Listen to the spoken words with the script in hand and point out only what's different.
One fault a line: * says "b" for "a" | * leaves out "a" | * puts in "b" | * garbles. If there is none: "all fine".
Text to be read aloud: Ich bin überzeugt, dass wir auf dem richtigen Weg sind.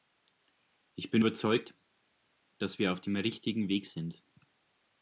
all fine